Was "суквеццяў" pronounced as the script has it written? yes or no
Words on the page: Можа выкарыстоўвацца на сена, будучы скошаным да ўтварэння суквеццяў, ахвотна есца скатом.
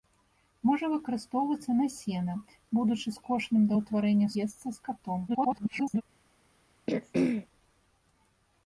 no